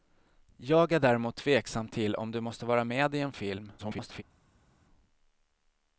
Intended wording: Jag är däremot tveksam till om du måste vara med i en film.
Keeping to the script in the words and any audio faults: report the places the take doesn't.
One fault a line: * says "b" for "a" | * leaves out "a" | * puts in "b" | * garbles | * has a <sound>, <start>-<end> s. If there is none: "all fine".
* garbles